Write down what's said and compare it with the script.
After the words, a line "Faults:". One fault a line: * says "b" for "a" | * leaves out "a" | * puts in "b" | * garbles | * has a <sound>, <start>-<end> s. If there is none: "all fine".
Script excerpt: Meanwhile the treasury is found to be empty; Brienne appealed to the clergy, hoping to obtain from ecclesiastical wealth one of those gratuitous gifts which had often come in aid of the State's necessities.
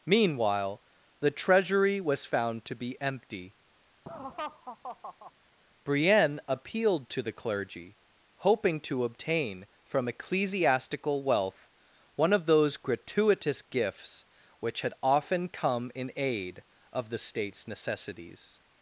Meanwhile the treasury was found to be empty; Brienne appealed to the clergy, hoping to obtain from ecclesiastical wealth one of those gratuitous gifts which had often come in aid of the State's necessities.
Faults:
* says "was" for "is"
* has a laugh, 4.1-5.3 s